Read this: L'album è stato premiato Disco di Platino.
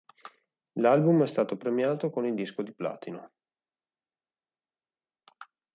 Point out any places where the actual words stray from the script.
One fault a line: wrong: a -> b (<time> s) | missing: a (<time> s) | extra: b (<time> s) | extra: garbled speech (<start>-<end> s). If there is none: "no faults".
extra: con il (2.1 s)